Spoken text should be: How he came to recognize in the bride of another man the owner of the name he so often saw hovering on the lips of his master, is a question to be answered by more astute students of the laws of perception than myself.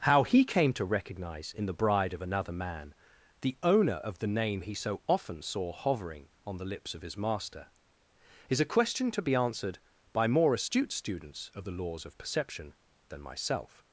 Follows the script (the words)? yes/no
yes